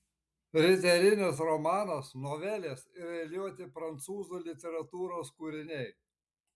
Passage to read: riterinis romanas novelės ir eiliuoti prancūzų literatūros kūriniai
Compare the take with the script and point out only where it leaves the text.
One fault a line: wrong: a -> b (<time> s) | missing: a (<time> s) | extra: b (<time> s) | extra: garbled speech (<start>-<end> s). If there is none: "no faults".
no faults